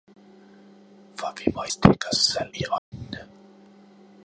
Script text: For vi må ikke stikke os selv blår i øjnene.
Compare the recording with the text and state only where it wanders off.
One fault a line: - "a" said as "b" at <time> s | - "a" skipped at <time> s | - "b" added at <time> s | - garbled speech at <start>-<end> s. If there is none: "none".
- "ikke" skipped at 1.6 s
- "blår" skipped at 2.5 s